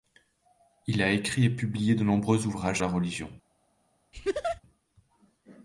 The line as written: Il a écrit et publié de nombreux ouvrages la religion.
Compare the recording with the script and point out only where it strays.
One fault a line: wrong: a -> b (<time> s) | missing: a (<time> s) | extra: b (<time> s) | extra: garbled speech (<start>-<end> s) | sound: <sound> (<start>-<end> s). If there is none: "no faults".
sound: laugh (4.1-4.6 s)